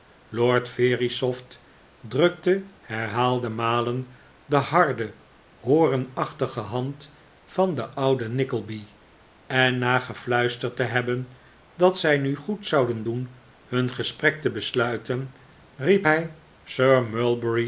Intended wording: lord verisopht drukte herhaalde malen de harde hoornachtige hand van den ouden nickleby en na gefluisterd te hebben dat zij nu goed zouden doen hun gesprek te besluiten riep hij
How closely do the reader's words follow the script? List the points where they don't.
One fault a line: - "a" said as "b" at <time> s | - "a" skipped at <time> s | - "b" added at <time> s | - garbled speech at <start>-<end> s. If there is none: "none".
none